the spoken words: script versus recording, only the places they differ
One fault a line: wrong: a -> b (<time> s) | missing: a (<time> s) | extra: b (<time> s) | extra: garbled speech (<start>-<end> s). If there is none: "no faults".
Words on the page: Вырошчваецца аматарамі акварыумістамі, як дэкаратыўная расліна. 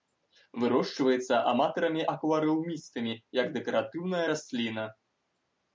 no faults